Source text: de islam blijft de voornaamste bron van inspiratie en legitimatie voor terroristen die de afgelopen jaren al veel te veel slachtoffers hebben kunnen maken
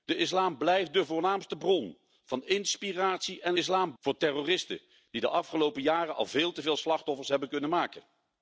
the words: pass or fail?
fail